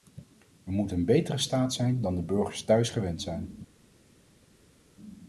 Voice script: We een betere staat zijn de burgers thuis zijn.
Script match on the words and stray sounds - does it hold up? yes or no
no